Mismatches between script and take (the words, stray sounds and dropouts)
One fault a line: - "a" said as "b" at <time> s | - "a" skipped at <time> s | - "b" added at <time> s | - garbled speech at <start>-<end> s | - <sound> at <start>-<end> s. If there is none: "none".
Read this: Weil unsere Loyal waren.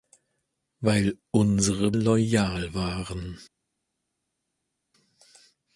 none